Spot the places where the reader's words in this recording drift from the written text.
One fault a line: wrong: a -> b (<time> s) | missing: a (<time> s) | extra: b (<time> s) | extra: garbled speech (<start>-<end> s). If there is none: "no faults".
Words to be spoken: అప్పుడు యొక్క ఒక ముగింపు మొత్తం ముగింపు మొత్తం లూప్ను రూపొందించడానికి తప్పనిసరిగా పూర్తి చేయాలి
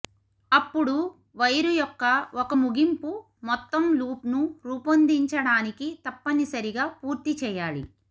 extra: వైరు (1.4 s)
missing: ముగింపు మొత్తం (3.8 s)